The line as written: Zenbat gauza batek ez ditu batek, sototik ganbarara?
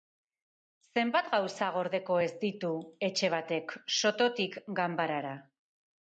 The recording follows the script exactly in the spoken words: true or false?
false